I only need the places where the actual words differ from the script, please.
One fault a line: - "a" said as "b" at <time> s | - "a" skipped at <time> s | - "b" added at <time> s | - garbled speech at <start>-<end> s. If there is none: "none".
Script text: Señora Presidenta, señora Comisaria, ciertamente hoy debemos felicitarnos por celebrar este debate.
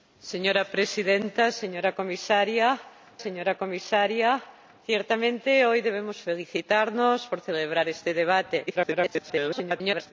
- "señora Comisaria" added at 3.2 s
- garbled speech at 8.7-10.1 s